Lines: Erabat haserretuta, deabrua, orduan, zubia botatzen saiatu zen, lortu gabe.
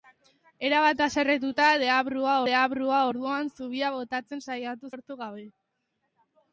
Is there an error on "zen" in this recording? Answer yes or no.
yes